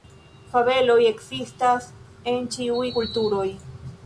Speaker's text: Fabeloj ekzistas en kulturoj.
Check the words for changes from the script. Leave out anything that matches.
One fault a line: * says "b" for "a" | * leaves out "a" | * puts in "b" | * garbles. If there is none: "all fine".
* puts in "ĉiuj"